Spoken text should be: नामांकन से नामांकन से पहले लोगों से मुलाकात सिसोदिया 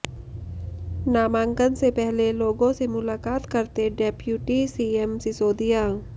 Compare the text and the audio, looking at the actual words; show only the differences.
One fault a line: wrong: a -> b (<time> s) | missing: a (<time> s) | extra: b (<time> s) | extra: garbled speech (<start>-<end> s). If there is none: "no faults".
missing: नामांकन से (1.9 s)
extra: करते डेप्युटी सीएम (3.5 s)